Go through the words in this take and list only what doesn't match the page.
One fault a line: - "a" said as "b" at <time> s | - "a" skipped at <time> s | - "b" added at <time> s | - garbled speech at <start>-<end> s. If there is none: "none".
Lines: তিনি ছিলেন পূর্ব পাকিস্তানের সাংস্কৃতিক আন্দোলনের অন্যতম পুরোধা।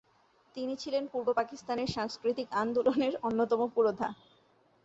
none